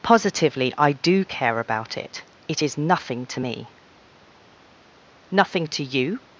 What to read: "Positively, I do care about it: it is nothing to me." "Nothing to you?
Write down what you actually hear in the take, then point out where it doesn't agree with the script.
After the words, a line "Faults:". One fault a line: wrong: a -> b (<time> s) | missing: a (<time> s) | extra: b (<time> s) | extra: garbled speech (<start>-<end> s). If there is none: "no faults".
"Positively, I do care about it: it is nothing to me." "Nothing to you?
Faults:
no faults